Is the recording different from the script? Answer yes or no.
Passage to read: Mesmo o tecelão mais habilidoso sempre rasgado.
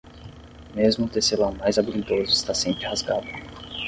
yes